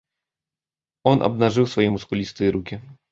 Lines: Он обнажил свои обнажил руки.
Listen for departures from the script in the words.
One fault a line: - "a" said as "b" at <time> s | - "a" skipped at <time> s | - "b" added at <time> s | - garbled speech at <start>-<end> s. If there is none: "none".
- "обнажил" said as "мускулистые" at 1.9 s